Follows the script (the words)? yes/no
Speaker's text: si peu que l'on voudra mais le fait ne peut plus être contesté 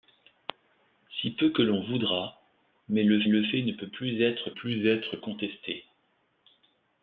no